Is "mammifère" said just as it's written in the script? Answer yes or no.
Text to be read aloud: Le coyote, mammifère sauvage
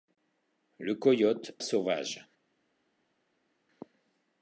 no